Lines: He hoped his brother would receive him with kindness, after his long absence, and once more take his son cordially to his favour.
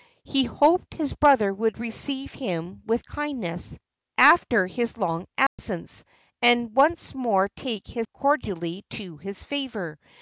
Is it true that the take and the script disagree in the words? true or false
true